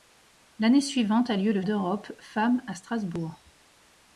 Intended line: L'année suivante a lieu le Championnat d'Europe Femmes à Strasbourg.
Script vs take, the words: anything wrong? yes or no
yes